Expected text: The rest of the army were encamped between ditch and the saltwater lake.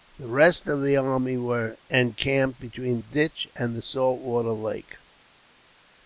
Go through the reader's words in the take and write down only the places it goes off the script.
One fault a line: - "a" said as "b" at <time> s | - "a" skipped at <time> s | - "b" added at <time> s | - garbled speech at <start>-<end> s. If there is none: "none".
none